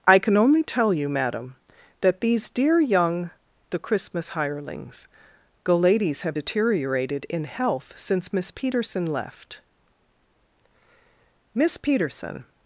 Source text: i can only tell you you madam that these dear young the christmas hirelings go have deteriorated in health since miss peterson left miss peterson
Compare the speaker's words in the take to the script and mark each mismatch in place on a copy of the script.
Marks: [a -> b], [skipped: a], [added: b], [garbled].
i can only tell you [skipped: you] madam that these dear young the christmas hirelings go [added: ladies] have deteriorated in health since miss peterson left miss peterson